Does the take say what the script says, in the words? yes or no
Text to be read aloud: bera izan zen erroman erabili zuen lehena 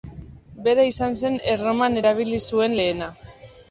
yes